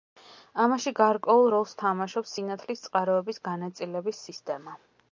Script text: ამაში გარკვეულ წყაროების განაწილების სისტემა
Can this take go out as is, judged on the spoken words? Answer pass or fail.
fail